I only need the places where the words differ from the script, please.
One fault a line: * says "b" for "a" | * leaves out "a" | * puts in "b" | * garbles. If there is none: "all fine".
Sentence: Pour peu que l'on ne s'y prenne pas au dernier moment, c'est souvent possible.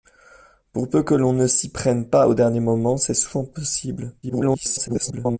* garbles